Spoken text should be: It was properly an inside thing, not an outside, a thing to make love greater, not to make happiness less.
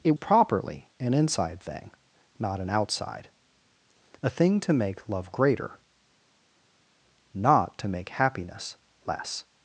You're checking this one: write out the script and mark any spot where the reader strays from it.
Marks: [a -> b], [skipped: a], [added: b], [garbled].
It [skipped: was] properly an inside thing, not an outside, a thing to make love greater, not to make happiness less.